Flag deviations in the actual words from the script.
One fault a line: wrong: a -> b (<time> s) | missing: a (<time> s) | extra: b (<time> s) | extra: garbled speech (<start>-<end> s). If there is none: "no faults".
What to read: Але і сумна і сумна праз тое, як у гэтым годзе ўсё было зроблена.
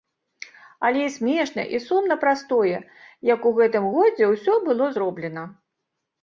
wrong: сумна -> смешна (1.2 s)